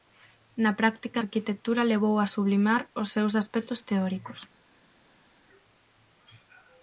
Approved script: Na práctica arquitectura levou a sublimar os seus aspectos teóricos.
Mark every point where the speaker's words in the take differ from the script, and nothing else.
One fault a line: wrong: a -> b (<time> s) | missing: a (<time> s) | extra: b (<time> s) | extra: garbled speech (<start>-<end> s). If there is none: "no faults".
no faults